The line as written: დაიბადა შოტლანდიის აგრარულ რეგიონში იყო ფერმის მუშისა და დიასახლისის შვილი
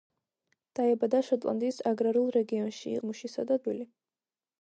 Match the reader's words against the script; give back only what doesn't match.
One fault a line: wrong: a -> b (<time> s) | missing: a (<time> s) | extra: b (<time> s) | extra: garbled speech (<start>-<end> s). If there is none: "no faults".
missing: იყო ფერმის (3.0 s)
missing: დიასახლისის (3.6 s)